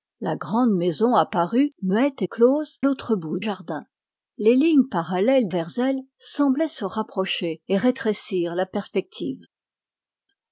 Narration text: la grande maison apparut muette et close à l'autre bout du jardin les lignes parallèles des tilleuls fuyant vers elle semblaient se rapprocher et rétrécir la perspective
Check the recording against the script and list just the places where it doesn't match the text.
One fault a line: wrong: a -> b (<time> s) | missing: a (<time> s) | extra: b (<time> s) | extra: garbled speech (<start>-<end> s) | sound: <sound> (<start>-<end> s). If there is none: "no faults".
missing: à (2.8 s)
missing: du (3.4 s)
missing: des tilleuls fuyant (5.5 s)